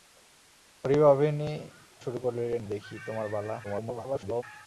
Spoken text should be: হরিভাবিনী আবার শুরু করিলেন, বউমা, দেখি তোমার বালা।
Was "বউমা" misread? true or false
true